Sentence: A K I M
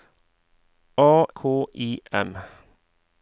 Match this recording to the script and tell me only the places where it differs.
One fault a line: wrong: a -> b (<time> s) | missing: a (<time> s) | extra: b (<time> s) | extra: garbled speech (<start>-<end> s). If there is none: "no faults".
no faults